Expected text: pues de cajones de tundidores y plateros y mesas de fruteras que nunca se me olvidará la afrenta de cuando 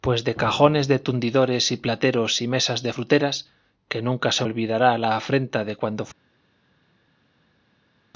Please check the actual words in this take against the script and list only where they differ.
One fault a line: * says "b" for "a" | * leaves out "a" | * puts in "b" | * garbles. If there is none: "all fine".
* leaves out "me"